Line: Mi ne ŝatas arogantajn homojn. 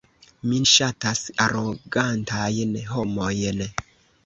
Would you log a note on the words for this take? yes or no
yes